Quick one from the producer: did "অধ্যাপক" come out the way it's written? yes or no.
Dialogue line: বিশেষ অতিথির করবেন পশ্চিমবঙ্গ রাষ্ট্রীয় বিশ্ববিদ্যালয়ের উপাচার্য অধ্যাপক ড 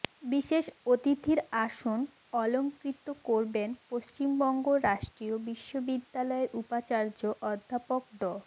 yes